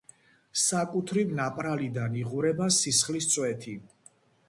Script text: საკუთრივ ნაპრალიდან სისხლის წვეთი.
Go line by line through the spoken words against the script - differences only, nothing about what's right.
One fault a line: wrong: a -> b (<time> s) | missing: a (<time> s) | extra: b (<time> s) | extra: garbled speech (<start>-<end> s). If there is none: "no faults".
extra: იღვრება (2.2 s)